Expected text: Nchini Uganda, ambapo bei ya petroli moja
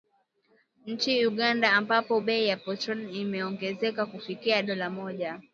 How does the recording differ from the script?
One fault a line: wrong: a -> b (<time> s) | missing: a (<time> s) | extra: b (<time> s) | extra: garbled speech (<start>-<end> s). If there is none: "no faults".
extra: imeongezeka kufikia dola (3.2 s)